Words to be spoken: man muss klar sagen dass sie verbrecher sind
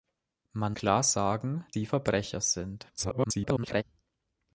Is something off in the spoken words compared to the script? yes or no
yes